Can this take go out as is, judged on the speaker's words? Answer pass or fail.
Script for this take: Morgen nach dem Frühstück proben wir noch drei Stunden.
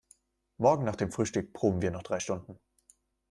pass